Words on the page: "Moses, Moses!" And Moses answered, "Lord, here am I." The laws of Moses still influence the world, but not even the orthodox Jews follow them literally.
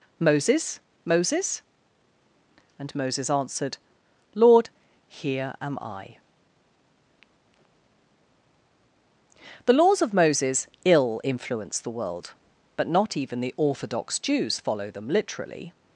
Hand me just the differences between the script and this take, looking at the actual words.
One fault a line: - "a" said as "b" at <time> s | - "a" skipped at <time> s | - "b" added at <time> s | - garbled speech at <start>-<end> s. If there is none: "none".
- "still" said as "ill" at 10.8 s